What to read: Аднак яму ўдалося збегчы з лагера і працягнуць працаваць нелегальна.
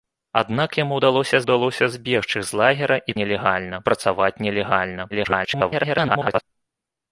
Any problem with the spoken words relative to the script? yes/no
yes